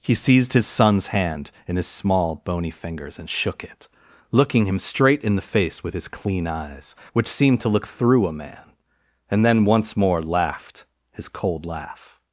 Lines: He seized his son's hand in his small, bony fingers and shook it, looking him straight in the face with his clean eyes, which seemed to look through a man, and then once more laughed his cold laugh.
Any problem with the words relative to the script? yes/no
no